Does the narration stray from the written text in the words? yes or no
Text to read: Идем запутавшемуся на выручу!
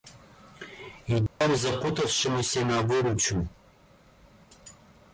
no